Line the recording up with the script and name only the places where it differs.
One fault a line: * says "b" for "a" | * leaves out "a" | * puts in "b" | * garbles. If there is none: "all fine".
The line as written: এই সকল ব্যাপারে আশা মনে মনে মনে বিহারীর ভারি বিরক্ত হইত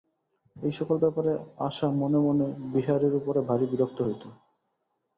* says "বিহারীর উপরে" for "মনে বিহারীর"